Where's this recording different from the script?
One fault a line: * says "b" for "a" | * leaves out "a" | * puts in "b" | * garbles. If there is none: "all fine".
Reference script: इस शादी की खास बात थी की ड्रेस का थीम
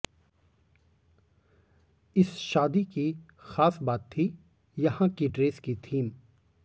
* puts in "यहां"
* says "की" for "का"